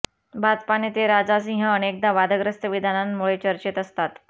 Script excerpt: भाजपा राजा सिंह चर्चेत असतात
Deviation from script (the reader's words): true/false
true